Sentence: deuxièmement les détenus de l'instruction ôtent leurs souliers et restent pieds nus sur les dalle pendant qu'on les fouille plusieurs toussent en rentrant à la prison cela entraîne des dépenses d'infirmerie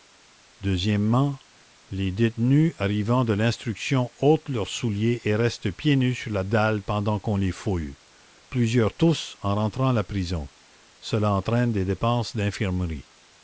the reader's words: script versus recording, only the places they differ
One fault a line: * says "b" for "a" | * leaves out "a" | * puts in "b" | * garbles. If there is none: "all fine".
* puts in "arrivant"
* says "la" for "les"